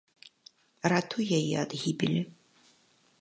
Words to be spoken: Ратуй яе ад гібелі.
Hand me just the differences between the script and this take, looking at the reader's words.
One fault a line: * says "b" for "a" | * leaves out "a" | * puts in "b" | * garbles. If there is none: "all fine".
all fine